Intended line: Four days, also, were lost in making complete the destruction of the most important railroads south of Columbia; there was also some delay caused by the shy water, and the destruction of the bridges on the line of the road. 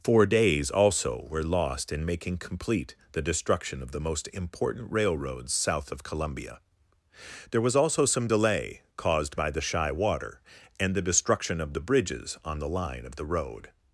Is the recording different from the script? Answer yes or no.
no